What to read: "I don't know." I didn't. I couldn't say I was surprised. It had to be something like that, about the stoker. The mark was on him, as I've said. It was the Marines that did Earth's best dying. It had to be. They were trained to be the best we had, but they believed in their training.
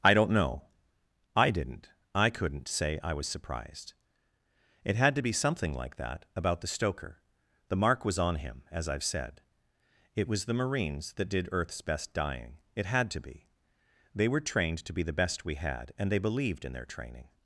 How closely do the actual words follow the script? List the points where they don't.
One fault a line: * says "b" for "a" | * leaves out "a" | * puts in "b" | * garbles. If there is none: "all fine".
* says "and" for "but"